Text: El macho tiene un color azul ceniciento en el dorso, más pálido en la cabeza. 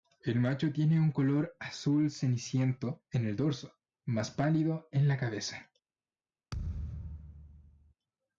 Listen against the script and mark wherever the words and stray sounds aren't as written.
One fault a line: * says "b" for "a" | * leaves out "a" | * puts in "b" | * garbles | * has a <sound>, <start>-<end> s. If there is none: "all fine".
* has a thud, 6.5-7.9 s